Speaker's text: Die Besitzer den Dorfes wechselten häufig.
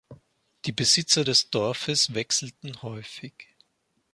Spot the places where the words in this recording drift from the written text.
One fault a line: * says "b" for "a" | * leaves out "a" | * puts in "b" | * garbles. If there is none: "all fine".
* says "des" for "den"